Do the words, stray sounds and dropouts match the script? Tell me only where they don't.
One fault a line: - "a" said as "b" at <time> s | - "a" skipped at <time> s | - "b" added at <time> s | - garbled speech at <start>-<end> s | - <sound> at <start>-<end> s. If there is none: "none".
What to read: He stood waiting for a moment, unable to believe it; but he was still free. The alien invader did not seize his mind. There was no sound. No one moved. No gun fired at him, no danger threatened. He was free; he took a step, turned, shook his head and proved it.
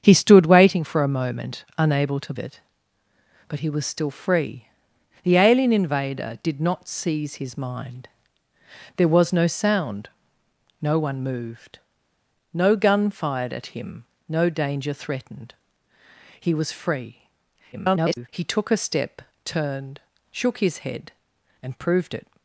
- "believe" skipped at 2.3 s
- garbled speech at 17.7-18.3 s